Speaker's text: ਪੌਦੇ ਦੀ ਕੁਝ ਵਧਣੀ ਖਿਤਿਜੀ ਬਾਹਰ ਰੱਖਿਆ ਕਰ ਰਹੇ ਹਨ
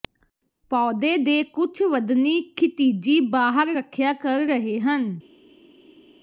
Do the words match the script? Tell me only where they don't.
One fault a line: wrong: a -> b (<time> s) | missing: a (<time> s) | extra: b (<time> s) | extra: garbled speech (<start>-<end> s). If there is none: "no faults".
wrong: ਦੀ -> ਦੇ (1.2 s)